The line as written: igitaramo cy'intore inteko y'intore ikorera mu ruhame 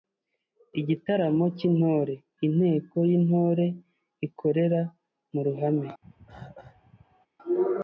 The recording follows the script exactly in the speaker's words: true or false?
true